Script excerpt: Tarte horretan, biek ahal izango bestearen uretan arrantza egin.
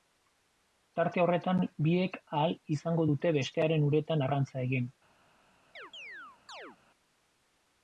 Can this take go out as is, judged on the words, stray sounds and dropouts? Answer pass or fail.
fail